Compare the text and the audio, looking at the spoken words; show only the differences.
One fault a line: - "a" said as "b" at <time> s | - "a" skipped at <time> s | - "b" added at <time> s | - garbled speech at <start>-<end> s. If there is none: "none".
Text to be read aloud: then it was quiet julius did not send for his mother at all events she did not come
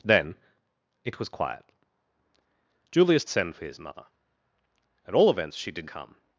- "did not" skipped at 3.2 s
- "not" skipped at 5.8 s